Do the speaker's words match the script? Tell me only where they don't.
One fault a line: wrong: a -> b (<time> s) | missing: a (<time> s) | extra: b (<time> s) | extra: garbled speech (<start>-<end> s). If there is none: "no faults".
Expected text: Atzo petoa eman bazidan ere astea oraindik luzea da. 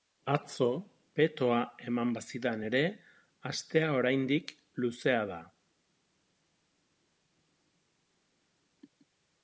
no faults